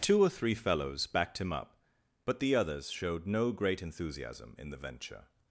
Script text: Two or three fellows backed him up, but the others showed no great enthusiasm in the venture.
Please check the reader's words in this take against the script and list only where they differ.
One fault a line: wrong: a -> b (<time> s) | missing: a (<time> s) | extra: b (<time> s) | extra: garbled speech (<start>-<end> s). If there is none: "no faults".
no faults